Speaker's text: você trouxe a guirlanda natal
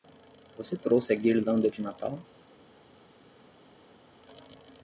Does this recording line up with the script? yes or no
no